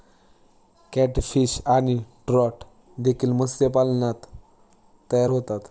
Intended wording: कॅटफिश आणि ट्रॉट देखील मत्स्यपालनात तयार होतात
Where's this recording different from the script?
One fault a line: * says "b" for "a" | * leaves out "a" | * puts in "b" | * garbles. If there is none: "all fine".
all fine